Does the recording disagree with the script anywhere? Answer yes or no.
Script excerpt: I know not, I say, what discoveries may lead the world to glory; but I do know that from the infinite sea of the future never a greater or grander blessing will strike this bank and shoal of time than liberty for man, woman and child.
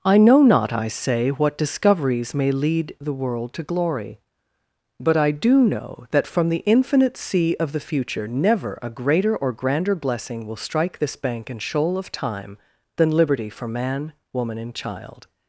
no